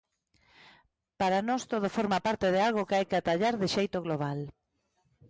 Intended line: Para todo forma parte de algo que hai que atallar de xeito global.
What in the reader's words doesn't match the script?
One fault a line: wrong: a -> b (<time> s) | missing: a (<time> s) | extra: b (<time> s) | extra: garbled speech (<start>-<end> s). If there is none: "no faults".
extra: nós (1.5 s)